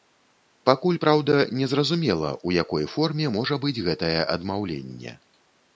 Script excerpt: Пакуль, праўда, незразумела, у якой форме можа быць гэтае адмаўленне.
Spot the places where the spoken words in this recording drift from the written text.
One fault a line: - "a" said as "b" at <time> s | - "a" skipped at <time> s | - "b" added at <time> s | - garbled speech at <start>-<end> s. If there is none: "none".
none